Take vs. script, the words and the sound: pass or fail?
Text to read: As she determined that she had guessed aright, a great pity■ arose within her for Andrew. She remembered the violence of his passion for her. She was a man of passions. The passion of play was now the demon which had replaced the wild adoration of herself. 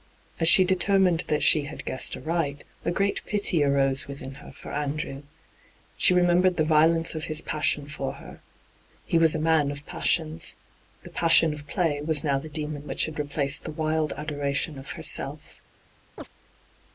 fail